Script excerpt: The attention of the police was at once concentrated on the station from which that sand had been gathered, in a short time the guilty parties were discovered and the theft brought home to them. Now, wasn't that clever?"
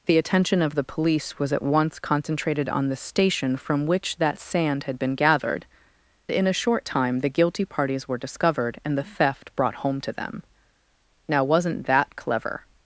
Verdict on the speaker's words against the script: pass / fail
pass